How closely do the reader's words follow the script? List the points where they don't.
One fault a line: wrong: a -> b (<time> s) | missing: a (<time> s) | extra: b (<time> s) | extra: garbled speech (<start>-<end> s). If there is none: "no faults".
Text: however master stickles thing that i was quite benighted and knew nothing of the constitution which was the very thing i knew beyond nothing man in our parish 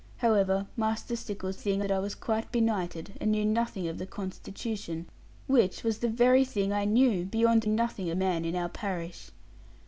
no faults